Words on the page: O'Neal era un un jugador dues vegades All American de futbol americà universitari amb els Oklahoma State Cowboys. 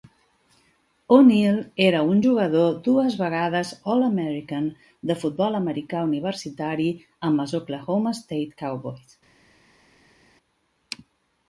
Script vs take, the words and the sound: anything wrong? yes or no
yes